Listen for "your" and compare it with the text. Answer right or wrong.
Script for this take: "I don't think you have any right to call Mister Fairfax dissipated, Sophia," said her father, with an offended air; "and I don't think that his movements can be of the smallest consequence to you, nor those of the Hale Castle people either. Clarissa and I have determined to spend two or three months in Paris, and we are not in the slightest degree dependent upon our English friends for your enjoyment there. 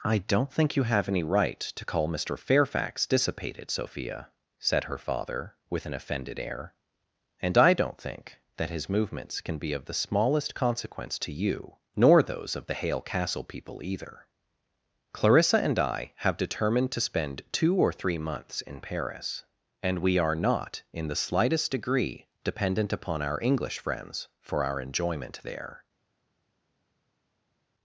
wrong